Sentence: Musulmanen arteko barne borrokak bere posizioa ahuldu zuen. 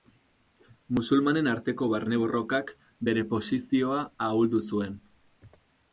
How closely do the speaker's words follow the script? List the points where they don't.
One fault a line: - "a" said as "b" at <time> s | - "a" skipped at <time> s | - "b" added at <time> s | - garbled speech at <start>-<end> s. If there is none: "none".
none